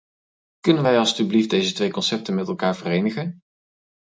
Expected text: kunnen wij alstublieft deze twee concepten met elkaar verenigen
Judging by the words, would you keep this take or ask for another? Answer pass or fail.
pass